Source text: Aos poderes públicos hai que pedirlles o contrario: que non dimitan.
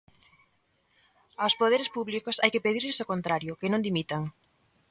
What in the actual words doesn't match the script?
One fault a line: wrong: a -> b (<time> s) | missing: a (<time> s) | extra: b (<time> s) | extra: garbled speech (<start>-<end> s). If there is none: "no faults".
no faults